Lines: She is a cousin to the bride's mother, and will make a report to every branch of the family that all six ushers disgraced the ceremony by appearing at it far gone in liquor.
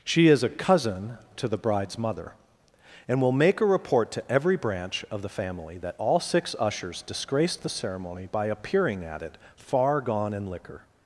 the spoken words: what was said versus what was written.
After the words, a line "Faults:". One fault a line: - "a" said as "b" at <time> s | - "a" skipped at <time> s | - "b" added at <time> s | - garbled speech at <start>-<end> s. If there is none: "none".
She is a cousin to the bride's mother, and will make a report to every branch of the family that all six ushers disgraced the ceremony by appearing at it far gone in liquor.
Faults:
none